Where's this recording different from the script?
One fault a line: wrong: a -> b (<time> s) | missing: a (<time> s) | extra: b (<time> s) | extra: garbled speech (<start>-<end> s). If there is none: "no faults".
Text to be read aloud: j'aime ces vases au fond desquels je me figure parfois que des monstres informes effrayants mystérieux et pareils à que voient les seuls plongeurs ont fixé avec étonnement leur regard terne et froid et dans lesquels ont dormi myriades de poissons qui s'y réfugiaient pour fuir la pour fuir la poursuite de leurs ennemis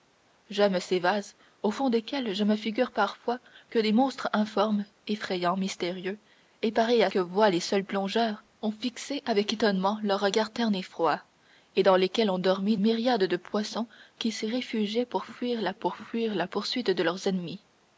no faults